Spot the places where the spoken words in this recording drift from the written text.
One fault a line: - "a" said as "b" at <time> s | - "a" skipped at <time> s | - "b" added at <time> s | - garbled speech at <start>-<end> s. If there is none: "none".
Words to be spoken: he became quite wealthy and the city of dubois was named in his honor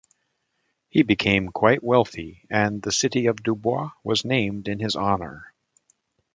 none